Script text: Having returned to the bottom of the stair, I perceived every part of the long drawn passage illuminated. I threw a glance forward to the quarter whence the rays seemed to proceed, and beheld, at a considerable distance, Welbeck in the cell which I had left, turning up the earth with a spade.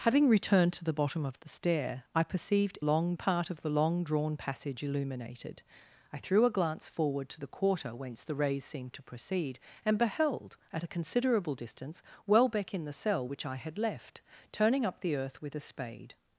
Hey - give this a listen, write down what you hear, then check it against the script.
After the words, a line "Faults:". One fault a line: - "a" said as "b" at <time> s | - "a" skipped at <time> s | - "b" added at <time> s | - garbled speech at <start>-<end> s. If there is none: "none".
Having returned to the bottom of the stair, I perceived long part of the long drawn passage illuminated. I threw a glance forward to the quarter whence the rays seemed to proceed, and beheld, at a considerable distance, Welbeck in the cell which I had left, turning up the earth with a spade.
Faults:
- "every" said as "long" at 2.8 s